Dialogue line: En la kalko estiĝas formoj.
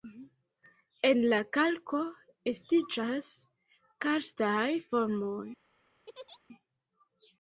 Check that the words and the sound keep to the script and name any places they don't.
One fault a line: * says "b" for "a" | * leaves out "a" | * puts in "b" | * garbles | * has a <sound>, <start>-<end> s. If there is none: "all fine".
* puts in "karstaj"
* has a laugh, 6.1-6.4 s